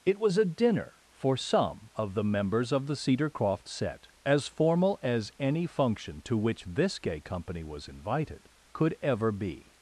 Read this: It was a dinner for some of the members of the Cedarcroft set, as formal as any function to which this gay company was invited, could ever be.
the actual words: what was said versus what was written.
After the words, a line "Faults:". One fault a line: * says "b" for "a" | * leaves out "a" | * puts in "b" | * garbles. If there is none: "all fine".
It was a dinner for some of the members of the Cedarcroft set, as formal as any function to which this gay company was invited, could ever be.
Faults:
all fine